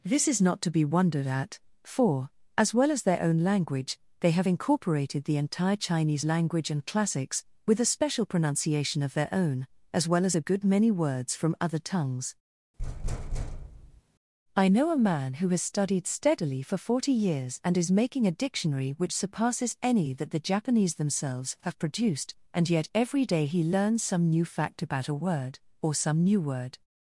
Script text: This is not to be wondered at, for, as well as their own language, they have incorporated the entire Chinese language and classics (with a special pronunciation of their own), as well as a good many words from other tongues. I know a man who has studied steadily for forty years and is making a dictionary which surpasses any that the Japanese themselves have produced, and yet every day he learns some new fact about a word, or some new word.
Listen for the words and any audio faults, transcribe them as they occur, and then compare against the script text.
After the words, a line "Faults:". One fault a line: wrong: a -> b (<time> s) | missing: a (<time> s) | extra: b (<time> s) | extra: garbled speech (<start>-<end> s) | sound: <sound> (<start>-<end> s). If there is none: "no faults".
This is not to be wondered at, for, as well as their own language, they have incorporated the entire Chinese language and classics (with a special pronunciation of their own), as well as a good many words from other tongues. I know a man who has studied steadily for forty years and is making a dictionary which surpasses any that the Japanese themselves have produced, and yet every day he learns some new fact about a word, or some new word.
Faults:
sound: thud (12.8-14.0 s)